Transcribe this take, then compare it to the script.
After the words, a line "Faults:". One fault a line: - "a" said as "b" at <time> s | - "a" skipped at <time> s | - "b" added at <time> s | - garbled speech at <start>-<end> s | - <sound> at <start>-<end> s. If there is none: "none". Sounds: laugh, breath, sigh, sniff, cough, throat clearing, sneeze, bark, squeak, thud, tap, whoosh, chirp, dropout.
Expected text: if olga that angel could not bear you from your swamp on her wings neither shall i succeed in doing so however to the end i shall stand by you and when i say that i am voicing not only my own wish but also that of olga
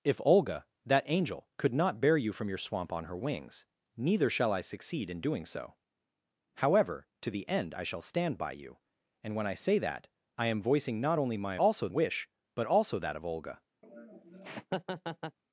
if olga that angel could not bear you from your swamp on her wings neither shall i succeed in doing so however to the end i shall stand by you and when i say that i am voicing not only my also wish but also that of olga
Faults:
- "own" said as "also" at 11.6 s
- laugh at 13.8-15.4 s